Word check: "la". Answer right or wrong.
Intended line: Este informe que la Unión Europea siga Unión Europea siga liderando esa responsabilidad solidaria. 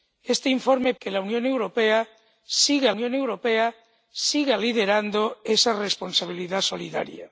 right